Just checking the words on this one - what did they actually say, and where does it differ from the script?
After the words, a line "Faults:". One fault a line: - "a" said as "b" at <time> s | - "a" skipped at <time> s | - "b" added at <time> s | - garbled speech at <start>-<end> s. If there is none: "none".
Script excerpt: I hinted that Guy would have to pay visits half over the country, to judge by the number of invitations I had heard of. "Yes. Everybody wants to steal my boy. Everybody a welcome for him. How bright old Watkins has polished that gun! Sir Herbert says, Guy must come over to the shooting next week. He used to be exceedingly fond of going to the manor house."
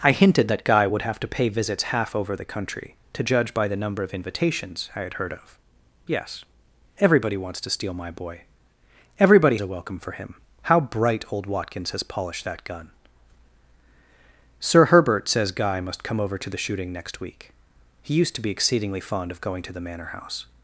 I hinted that Guy would have to pay visits half over the country, to judge by the number of invitations I had heard of. "Yes. Everybody wants to steal my boy. Everybody a welcome for him. How bright old Watkins has polished that gun! Sir Herbert says, Guy must come over to the shooting next week. He used to be exceedingly fond of going to the manor house."
Faults:
none